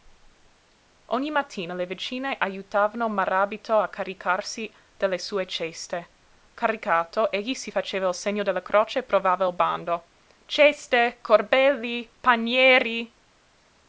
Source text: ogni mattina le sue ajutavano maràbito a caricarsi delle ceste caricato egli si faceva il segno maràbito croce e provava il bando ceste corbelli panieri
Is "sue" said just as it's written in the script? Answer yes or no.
no